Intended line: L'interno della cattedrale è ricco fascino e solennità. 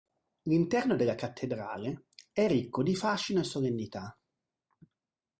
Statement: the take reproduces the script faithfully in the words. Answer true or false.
false